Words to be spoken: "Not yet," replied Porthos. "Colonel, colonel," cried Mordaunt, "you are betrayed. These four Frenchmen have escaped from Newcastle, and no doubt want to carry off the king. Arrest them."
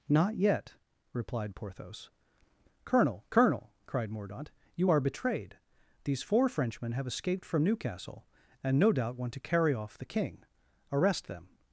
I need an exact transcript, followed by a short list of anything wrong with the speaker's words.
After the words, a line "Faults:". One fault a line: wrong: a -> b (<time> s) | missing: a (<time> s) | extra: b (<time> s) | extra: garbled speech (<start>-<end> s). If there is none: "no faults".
"Not yet," replied Porthos. "Colonel, colonel," cried Mordaunt, "you are betrayed. These four Frenchmen have escaped from Newcastle, and no doubt want to carry off the king. Arrest them."
Faults:
no faults